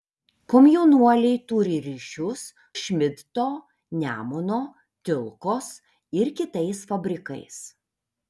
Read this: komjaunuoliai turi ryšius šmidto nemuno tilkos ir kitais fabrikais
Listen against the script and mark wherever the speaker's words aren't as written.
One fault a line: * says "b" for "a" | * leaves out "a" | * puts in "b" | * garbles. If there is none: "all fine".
all fine